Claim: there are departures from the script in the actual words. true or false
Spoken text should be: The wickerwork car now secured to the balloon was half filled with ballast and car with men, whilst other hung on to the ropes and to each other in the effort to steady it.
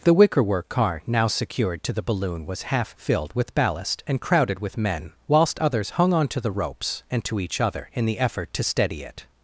true